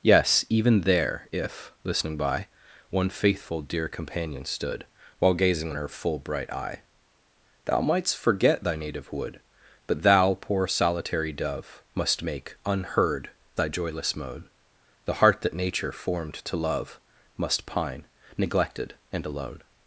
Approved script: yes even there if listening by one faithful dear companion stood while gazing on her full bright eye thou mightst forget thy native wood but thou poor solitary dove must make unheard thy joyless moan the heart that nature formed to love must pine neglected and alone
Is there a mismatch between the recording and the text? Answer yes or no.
yes